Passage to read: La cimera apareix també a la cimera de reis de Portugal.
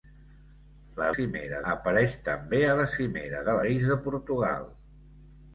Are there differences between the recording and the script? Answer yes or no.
no